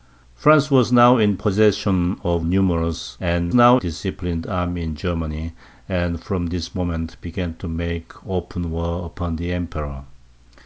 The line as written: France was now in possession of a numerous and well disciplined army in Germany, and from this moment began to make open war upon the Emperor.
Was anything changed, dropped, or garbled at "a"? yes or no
yes